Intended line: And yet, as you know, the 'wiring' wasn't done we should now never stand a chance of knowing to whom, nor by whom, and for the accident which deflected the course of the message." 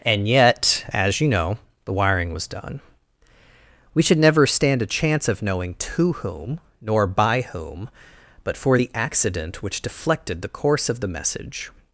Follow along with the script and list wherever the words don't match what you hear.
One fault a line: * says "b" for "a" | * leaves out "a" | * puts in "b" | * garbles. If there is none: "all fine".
* says "was" for "wasn't"
* leaves out "now"
* says "but" for "and"